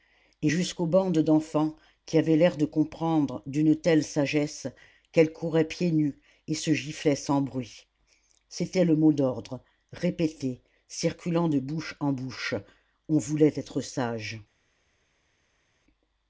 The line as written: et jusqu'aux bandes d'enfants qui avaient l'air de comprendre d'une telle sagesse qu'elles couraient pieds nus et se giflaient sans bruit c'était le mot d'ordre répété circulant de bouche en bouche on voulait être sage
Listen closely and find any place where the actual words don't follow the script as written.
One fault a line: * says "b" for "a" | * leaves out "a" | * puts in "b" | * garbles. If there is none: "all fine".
all fine